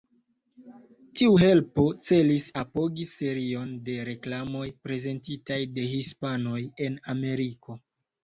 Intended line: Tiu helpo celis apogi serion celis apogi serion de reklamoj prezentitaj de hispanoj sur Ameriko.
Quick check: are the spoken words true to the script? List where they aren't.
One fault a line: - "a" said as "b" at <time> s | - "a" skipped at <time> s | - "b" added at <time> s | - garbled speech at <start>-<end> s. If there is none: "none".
- "celis apogi serion" skipped at 3.7 s
- "sur" said as "en" at 6.9 s